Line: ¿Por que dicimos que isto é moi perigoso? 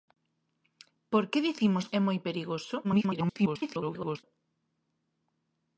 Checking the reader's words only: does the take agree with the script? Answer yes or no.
no